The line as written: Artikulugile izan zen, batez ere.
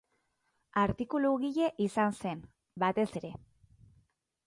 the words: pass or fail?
pass